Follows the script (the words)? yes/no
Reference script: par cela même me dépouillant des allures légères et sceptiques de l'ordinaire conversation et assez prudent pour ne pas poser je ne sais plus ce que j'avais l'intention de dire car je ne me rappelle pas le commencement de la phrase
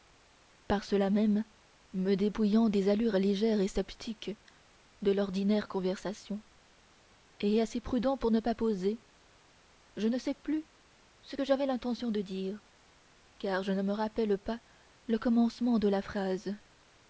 yes